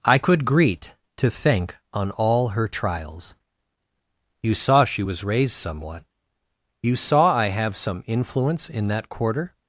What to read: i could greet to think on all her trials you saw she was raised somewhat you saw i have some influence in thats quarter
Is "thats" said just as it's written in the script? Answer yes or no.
no